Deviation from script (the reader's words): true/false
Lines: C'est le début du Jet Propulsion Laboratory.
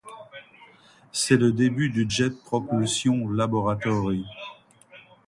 false